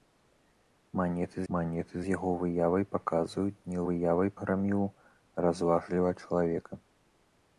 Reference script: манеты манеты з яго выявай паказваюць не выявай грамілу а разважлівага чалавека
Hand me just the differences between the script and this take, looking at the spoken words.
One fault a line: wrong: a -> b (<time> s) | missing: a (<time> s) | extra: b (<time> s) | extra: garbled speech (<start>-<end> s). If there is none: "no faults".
no faults